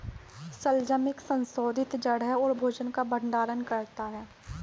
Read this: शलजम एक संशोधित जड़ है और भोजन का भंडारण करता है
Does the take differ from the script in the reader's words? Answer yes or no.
no